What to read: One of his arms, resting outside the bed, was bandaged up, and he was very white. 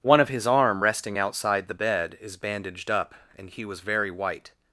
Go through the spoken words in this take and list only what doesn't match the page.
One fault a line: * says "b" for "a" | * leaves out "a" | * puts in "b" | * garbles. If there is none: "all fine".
* says "arm" for "arms"
* says "is" for "was"